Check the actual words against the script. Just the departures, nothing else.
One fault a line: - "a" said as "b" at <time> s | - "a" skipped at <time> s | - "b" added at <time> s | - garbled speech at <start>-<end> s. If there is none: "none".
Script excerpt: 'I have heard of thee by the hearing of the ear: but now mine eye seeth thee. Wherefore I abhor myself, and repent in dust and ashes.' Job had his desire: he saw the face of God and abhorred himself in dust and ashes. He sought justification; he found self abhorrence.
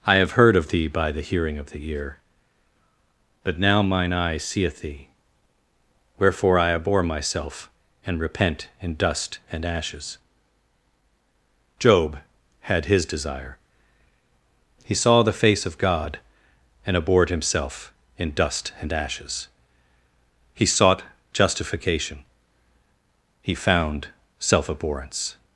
none